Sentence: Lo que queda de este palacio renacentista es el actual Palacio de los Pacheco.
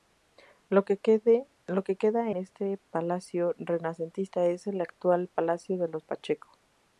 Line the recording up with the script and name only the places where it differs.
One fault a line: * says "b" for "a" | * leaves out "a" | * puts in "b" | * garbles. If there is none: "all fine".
* leaves out "de"